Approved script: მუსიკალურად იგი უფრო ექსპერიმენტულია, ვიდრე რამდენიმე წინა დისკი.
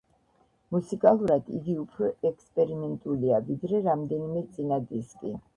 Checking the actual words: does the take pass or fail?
pass